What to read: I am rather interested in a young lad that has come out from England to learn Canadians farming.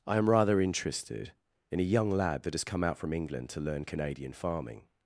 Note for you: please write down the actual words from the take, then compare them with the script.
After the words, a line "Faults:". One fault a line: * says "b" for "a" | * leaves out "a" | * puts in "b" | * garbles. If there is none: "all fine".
I am rather interested in a young lad that has come out from England to learn Canadian farming.
Faults:
* says "Canadian" for "Canadians"